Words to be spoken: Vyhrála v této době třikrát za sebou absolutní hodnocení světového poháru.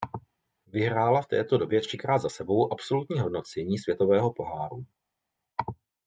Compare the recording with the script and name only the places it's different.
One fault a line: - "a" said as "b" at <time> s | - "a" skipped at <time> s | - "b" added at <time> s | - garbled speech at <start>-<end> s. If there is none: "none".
none